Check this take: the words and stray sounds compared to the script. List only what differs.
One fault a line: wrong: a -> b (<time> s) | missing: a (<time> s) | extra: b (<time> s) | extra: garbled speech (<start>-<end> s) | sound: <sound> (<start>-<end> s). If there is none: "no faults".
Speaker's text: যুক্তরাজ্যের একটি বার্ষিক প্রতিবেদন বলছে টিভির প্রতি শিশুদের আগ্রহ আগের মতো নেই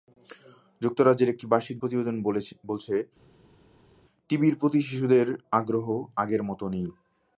no faults